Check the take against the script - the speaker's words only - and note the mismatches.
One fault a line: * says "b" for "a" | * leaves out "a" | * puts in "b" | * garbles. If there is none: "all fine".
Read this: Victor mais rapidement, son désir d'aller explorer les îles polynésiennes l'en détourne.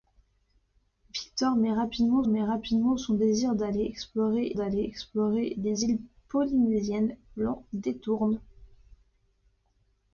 * puts in "mais rapidement"
* puts in "d'aller explorer"